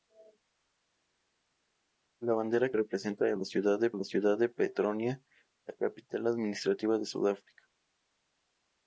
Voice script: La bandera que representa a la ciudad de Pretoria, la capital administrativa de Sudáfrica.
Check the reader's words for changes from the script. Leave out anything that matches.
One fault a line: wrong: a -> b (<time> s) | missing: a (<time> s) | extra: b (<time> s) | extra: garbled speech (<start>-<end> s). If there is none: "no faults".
missing: que (2.7 s)
extra: la ciudad de (3.9 s)